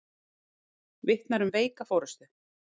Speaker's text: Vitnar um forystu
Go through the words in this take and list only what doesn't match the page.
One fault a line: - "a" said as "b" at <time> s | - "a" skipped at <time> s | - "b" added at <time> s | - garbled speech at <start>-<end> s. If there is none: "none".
- "veika" added at 1.6 s